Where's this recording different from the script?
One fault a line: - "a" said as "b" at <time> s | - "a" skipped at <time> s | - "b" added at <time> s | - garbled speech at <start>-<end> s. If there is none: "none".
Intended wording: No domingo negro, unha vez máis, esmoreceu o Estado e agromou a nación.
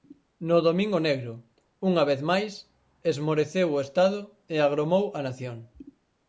none